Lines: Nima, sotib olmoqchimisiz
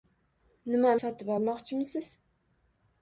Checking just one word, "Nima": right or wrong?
right